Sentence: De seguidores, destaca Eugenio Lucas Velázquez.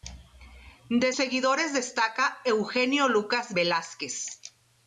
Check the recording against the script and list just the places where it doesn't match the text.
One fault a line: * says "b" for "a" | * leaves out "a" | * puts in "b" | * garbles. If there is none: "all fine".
all fine